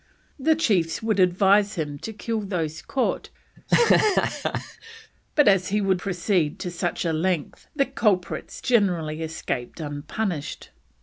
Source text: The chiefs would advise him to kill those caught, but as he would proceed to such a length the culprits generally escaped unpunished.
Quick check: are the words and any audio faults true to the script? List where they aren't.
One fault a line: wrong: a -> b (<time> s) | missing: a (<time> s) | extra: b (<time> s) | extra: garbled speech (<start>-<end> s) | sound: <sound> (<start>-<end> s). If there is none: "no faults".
sound: laugh (3.6-5.1 s)